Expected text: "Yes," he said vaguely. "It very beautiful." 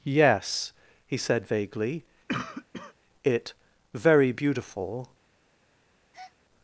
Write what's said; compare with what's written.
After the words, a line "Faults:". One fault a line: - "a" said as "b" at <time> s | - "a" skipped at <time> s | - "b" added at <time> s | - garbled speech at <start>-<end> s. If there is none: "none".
"Yes," he said vaguely. "It very beautiful."
Faults:
none